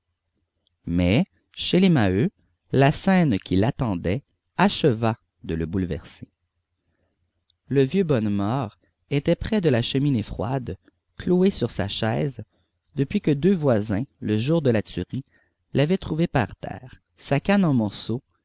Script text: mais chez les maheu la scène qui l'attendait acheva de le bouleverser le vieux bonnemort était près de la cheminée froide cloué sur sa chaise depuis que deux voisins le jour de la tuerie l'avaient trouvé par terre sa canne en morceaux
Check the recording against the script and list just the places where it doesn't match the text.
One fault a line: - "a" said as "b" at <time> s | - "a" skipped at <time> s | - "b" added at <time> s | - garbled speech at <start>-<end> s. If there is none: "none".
none